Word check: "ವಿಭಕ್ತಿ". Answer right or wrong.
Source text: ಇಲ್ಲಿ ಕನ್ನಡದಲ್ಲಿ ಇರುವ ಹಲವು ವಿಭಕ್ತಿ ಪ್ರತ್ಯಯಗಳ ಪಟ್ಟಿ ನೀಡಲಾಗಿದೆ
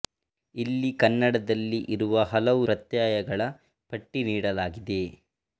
wrong